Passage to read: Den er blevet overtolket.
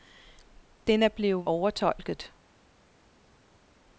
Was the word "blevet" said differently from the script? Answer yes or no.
no